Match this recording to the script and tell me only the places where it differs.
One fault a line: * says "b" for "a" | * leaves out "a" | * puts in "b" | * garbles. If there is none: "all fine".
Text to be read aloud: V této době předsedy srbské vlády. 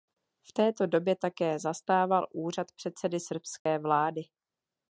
* puts in "také zastával úřad"